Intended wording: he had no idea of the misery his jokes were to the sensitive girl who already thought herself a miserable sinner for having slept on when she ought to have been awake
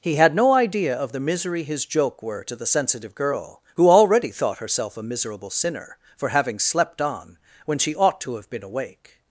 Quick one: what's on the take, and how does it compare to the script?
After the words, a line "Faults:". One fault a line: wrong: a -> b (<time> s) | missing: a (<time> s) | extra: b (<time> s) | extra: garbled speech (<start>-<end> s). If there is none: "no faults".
he had no idea of the misery his joke were to the sensitive girl who already thought herself a miserable sinner for having slept on when she ought to have been awake
Faults:
wrong: jokes -> joke (1.9 s)